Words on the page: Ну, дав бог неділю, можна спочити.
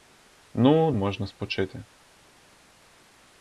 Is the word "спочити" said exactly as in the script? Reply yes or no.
yes